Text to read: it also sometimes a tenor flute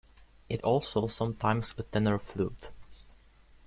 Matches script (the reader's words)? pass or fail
pass